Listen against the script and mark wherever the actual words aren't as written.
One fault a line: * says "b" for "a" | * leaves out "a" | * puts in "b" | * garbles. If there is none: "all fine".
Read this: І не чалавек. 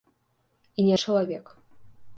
all fine